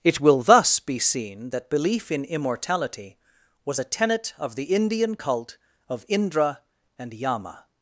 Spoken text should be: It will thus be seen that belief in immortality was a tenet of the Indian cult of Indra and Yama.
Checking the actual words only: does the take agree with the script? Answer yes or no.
yes